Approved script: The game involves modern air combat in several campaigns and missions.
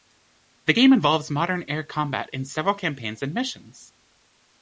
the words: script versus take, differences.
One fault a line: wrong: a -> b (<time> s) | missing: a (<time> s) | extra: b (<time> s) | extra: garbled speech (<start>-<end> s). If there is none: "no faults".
no faults